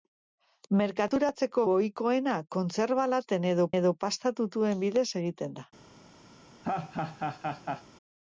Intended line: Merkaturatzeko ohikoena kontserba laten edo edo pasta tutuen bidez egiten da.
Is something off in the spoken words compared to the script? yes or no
no